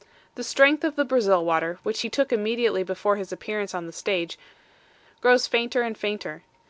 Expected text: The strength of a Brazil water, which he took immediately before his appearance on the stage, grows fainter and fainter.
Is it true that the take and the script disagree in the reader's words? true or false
true